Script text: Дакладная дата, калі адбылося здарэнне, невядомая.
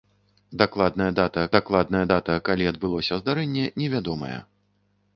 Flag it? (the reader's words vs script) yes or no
yes